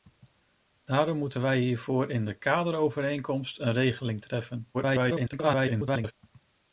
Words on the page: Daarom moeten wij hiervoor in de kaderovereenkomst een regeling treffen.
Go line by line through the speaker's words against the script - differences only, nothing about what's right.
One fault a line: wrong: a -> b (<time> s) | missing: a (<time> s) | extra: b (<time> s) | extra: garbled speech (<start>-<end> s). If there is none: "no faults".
extra: garbled speech (4.7-6.1 s)